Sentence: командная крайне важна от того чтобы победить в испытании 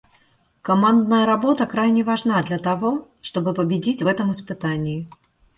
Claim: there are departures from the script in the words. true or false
true